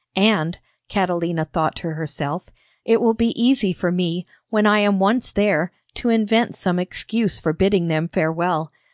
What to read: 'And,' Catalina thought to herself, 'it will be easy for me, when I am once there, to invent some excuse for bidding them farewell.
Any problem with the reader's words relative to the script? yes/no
no